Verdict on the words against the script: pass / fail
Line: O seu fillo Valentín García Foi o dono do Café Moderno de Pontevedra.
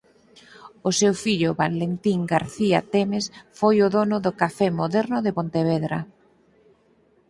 fail